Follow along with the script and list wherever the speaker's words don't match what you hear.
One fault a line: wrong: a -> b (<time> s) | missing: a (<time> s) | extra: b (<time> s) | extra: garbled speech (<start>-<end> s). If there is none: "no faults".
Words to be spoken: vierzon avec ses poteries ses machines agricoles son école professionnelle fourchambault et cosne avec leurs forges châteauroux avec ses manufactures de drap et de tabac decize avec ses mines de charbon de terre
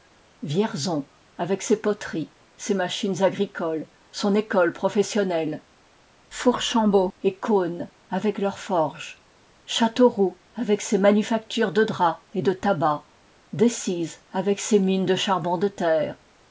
no faults